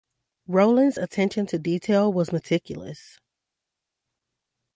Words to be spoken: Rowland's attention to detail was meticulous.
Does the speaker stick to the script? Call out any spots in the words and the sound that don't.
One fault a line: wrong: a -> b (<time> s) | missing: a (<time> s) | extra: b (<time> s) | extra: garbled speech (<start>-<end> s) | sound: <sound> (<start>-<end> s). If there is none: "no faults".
no faults